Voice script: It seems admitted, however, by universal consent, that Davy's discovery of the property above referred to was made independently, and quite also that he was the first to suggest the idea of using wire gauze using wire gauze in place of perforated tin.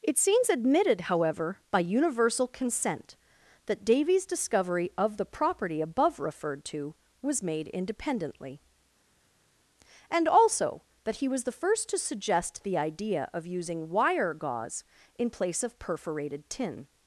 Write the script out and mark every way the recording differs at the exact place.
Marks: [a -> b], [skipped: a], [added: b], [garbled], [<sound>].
It seems admitted, however, by universal consent, that Davy's discovery of the property above referred to was made independently, and [skipped: quite] also that he was the first to suggest the idea of using wire gauze [skipped: using wire gauze] in place of perforated tin.